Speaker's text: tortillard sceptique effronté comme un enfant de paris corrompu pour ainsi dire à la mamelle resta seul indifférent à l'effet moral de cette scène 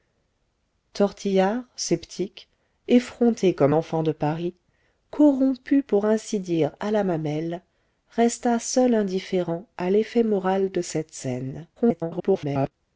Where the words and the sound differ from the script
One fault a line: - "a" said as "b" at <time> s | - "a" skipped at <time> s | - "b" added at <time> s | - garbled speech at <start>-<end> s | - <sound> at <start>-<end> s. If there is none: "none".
- "un" skipped at 3.8 s
- garbled speech at 11.8-12.7 s